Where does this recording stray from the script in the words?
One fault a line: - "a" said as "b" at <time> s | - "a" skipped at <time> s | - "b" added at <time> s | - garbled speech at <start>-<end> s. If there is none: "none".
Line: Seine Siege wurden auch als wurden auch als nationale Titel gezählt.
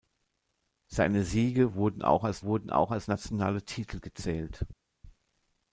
none